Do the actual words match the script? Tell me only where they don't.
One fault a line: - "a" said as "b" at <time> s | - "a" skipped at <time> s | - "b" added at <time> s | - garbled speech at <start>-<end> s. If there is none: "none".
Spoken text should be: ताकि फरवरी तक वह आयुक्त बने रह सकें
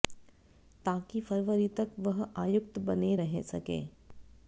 none